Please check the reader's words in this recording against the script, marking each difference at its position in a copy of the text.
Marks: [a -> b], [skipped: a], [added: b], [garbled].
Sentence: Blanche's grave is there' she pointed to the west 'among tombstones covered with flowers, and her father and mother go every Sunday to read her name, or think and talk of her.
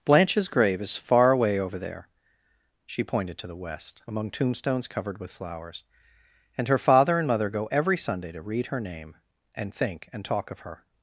Blanche's grave is [added: far away over] there' she pointed to the west 'among tombstones covered with flowers, and her father and mother go every Sunday to read her name, [or -> and] think and talk of her.